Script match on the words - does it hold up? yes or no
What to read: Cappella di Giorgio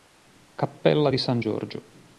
no